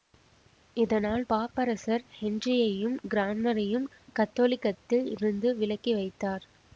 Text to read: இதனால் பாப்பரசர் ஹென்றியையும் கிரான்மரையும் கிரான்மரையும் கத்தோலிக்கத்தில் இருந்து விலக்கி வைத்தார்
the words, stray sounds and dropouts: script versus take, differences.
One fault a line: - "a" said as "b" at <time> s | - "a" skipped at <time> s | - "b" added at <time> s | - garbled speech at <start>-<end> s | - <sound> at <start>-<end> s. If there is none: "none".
- "கிரான்மரையும்" skipped at 3.9 s